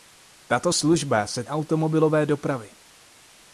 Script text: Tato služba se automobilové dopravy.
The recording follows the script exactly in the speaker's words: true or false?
true